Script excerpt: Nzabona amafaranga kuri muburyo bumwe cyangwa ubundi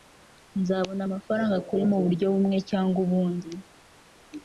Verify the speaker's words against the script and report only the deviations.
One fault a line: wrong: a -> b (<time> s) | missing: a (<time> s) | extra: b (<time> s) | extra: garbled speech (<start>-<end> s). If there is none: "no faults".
no faults